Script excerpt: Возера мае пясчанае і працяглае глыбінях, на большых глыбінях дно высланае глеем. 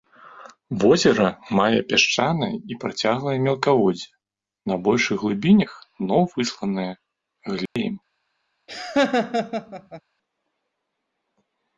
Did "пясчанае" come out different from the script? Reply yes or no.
no